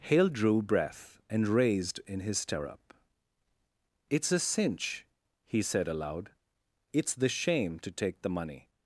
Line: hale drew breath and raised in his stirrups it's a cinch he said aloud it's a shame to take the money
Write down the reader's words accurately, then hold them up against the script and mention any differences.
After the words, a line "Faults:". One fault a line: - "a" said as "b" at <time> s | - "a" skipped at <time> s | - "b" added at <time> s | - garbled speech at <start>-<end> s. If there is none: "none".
hale drew breath and raised in his stirrup it's a cinch he said aloud it's the shame to take the money
Faults:
- "stirrups" said as "stirrup" at 2.4 s
- "a" said as "the" at 7.1 s